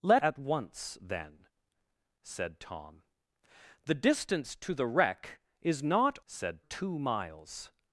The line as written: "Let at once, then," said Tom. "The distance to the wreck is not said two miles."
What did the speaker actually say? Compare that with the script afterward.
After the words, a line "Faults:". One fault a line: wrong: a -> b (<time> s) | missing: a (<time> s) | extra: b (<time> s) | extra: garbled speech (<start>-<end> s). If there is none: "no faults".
"Let at once, then," said Tom. "The distance to the wreck is not said two miles."
Faults:
no faults